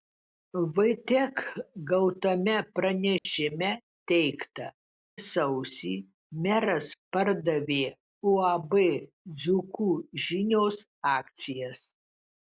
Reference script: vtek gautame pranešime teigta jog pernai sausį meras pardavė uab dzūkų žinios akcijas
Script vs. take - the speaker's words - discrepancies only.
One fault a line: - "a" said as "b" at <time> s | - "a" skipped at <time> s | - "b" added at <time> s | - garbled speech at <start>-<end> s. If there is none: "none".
- "jog pernai" skipped at 4.7 s